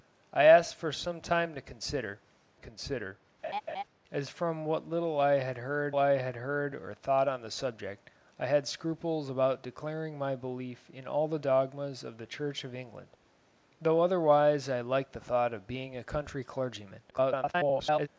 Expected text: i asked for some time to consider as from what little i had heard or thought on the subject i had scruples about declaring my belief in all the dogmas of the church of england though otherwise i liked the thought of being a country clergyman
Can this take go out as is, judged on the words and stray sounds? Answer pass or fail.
fail